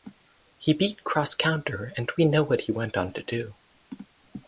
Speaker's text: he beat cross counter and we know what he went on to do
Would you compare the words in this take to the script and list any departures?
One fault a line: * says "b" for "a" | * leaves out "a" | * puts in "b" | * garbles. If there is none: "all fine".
all fine